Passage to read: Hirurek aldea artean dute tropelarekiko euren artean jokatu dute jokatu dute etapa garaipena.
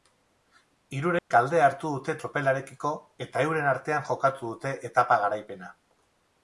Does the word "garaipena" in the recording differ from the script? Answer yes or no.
no